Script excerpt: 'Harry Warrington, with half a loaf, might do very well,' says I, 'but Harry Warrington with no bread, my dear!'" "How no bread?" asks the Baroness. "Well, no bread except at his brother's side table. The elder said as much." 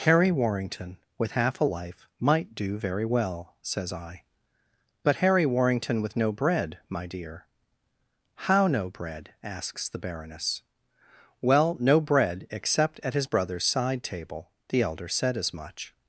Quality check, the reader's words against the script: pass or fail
fail